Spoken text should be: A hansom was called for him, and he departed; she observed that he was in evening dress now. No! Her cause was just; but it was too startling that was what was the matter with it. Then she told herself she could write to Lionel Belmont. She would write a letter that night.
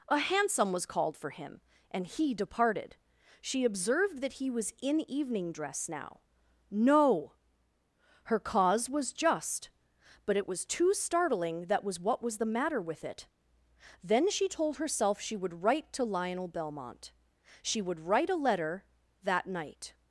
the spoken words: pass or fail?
fail